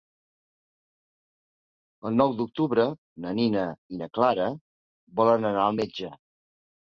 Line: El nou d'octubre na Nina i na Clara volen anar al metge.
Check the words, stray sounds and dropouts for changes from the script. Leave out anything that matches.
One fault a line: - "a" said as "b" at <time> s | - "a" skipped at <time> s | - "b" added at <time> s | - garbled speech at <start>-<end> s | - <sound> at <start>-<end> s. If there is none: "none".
none